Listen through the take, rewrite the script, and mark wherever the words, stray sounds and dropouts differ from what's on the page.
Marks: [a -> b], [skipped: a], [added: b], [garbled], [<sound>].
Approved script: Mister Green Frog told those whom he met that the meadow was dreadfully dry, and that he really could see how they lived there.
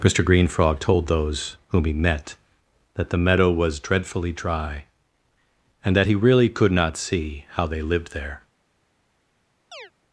Mister Green Frog told those whom he met that the meadow was dreadfully dry, and that he really could [added: not] see how they lived there. [chirp]